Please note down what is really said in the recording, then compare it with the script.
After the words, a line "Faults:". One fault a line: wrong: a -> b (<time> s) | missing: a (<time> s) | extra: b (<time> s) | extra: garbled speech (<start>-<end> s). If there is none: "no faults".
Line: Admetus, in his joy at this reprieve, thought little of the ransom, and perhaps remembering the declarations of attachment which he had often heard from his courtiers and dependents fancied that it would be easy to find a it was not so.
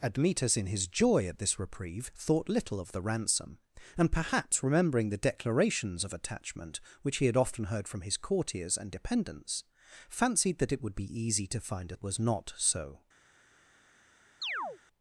Admetus, in his joy at this reprieve, thought little of the ransom, and perhaps remembering the declarations of attachment which he had often heard from his courtiers and dependents fancied that it would be easy to find a it was not so.
Faults:
no faults